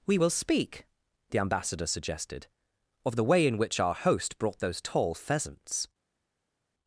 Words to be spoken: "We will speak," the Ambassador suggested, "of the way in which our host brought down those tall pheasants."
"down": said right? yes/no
no